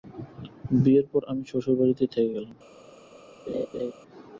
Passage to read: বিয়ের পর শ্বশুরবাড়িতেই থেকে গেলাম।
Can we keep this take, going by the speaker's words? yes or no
no